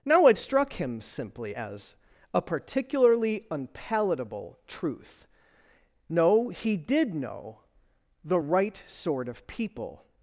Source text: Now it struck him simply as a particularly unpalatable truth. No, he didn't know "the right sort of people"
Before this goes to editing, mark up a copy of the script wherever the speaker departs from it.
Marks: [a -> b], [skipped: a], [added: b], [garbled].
Now it struck him simply as a particularly unpalatable truth. No, he [didn't -> did] know "the right sort of people"